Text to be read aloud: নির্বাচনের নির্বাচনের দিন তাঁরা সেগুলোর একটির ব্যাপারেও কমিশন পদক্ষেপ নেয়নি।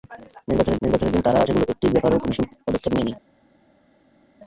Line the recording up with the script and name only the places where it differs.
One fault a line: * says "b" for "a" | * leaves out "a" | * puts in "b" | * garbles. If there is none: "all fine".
all fine